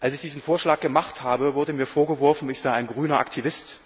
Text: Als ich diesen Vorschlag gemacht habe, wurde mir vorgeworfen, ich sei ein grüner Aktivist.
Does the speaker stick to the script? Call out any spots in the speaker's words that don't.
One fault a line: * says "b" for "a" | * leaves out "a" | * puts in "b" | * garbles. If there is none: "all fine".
all fine